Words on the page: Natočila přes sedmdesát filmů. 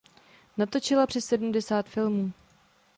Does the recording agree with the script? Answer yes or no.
yes